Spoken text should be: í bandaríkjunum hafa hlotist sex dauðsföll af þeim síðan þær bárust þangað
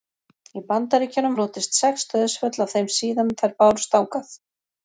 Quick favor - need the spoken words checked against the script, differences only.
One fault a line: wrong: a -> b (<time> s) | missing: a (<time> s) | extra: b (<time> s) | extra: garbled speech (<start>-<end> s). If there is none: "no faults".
missing: hafa (1.4 s)